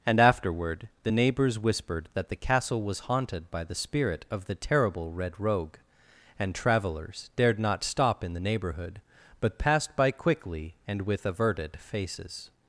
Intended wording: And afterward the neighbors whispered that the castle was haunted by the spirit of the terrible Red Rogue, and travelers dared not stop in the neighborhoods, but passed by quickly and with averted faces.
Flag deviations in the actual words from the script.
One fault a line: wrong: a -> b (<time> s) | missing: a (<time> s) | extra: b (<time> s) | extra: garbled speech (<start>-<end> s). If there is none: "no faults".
wrong: neighborhoods -> neighborhood (8.4 s)